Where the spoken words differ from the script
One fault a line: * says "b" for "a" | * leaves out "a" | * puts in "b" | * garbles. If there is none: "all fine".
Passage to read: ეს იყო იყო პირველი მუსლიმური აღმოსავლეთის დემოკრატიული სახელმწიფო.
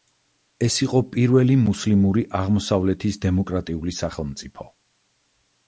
* leaves out "იყო"